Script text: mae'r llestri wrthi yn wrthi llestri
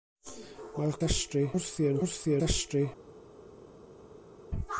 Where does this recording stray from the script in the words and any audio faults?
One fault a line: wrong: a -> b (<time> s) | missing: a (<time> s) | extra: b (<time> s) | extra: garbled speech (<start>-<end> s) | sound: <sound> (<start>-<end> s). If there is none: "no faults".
no faults